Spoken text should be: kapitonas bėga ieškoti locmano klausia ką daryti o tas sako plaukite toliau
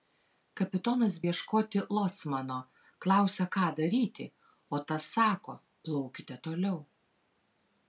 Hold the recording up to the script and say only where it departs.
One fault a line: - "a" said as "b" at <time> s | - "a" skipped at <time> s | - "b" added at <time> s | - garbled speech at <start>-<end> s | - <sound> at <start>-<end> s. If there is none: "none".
- "bėga" skipped at 1.2 s